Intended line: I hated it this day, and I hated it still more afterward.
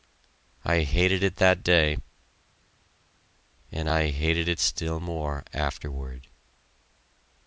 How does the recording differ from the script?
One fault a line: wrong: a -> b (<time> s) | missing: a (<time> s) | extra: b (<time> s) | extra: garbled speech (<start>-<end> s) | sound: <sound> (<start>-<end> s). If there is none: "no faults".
wrong: this -> that (1.4 s)